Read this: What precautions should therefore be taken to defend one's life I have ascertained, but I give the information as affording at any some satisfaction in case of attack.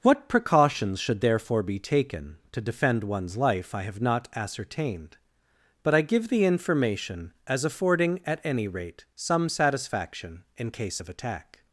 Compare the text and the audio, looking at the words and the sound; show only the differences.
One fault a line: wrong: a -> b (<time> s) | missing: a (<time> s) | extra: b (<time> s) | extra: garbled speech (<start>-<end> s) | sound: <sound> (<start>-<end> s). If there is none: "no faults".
extra: not (4.0 s)
extra: rate (8.7 s)